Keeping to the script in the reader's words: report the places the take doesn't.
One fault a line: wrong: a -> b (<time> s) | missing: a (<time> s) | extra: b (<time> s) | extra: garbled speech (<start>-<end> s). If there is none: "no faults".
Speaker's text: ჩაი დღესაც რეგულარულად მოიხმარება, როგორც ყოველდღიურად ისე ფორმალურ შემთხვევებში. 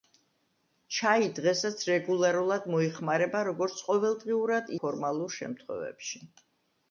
missing: ისე (4.7 s)